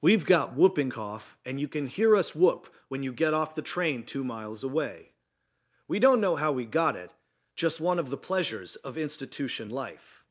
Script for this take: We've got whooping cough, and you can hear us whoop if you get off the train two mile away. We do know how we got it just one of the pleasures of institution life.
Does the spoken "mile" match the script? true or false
false